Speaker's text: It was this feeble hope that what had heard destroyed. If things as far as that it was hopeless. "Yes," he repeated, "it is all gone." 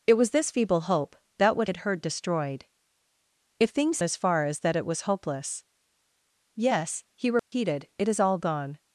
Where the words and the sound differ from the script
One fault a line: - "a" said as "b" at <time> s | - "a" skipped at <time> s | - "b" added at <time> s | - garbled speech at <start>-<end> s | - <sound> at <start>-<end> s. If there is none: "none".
- dropout at 7.4-7.5 s